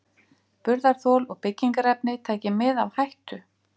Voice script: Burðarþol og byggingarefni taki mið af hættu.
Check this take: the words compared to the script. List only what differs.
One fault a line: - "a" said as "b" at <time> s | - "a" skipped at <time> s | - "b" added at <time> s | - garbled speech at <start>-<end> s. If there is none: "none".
none